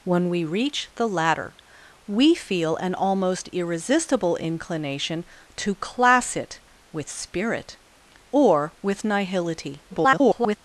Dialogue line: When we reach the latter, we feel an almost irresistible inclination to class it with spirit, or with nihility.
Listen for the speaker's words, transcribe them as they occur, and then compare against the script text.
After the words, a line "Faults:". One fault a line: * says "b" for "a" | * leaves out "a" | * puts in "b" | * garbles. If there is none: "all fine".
When we reach the latter, we feel an almost irresistible inclination to class it with spirit, or with nihility. [garbled]
Faults:
* garbles